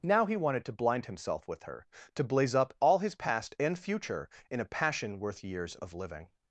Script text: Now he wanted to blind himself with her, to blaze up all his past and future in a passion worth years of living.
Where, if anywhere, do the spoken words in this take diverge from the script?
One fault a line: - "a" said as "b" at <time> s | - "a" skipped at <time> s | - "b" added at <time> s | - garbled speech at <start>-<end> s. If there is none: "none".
none